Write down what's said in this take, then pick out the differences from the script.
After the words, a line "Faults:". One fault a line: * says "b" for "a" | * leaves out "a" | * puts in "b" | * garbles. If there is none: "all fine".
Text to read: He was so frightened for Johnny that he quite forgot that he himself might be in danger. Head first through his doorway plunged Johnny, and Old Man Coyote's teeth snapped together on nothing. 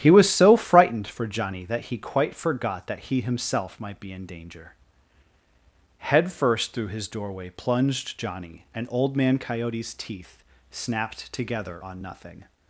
He was so frightened for Johnny that he quite forgot that he himself might be in danger. Head first through his doorway plunged Johnny, and Old Man Coyote's teeth snapped together on nothing.
Faults:
all fine